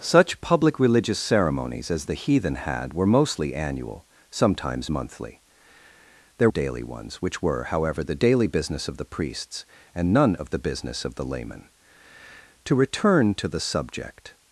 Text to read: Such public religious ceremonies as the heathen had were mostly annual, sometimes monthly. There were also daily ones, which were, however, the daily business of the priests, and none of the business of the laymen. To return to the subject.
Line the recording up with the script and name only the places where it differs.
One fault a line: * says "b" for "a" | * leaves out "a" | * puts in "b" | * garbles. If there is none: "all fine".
* leaves out "were also"